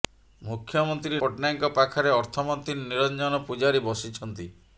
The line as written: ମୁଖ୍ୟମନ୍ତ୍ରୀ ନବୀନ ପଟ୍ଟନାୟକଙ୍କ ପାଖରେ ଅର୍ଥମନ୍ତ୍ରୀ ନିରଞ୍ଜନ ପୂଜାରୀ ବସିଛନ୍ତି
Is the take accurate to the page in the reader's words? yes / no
no